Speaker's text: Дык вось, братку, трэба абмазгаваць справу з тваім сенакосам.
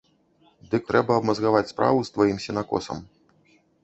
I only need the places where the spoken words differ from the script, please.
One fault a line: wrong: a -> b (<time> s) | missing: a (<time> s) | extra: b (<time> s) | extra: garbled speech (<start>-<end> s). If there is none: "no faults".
missing: вось братку (0.9 s)